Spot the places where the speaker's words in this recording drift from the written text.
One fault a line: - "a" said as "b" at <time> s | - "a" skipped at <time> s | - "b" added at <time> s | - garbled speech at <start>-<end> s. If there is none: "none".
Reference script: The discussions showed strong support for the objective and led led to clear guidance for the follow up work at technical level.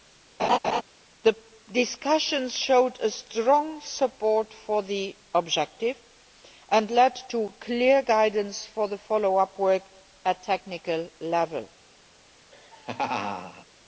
- "led" skipped at 7.1 s